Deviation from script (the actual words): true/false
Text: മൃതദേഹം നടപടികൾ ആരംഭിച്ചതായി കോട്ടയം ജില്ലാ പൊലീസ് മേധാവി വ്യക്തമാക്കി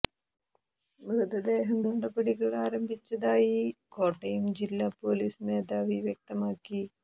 false